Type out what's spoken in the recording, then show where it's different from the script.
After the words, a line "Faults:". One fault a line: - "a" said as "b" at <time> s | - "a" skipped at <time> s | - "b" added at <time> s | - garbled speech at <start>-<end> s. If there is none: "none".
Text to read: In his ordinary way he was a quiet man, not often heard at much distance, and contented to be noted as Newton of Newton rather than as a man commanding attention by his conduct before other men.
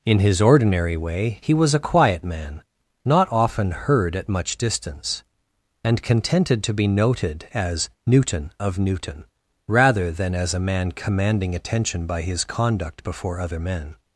In his ordinary way he was a quiet man, not often heard at much distance, and contented to be noted as Newton of Newton rather than as a man commanding attention by his conduct before other men.
Faults:
none